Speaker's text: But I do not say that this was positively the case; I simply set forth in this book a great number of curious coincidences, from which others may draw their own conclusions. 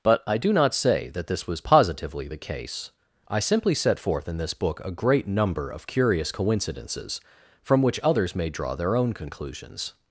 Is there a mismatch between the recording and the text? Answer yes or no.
no